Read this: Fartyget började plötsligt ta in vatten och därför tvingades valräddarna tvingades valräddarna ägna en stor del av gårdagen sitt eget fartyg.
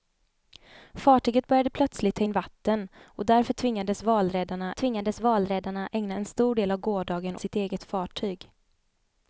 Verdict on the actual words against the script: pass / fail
pass